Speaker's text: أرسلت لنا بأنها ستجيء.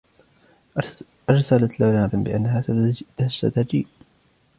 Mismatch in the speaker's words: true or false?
false